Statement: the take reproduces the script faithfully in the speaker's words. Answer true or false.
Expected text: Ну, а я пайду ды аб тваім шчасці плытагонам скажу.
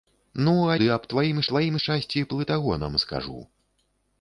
false